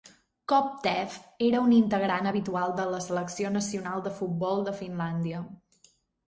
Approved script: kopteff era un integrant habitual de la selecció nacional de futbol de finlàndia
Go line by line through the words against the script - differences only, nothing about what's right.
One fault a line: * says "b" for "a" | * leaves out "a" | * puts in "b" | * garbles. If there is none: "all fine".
all fine